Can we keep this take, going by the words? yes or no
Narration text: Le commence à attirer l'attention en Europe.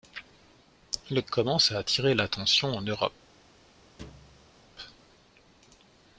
yes